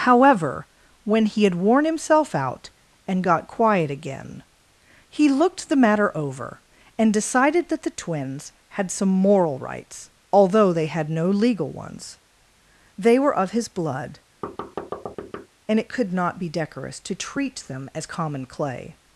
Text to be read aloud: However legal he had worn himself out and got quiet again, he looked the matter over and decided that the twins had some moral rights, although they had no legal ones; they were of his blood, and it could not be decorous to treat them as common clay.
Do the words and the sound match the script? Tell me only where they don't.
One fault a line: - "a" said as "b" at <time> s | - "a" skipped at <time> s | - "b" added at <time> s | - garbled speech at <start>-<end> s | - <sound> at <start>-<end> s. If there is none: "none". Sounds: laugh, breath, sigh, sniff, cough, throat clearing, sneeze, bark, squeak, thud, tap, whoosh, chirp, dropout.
- "legal" said as "when" at 1.0 s
- thud at 14.4-15.5 s